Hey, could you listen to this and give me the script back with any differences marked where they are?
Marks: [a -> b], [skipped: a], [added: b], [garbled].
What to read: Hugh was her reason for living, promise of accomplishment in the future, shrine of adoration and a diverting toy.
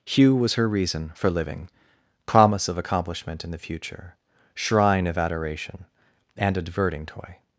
Hugh was her reason for living, promise of accomplishment in the future, shrine of adoration and a diverting toy.